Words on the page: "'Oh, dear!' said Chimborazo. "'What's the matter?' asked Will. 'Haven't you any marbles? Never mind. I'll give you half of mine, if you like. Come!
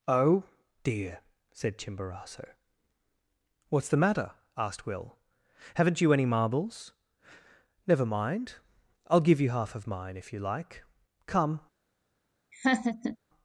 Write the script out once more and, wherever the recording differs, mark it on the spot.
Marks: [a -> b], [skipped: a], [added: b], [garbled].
"'Oh, dear!' said Chimborazo. "'What's the matter?' asked Will. 'Haven't you any marbles? Never mind. I'll give you half of mine, if you like. Come!